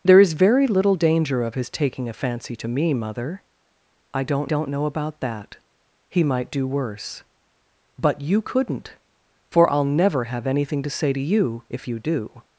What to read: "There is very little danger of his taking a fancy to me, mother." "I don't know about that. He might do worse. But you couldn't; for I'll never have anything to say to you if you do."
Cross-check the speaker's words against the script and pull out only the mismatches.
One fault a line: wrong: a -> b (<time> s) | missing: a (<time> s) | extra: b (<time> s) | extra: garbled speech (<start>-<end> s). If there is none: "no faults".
extra: don't (4.4 s)